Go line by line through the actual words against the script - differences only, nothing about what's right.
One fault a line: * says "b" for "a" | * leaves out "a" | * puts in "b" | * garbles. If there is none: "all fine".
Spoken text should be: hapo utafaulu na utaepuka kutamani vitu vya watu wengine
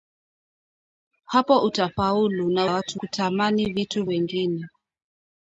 * says "watu" for "utaepuka"
* leaves out "vya watu"